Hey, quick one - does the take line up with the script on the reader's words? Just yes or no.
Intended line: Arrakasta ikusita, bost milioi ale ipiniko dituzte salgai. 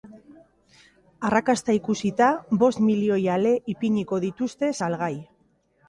yes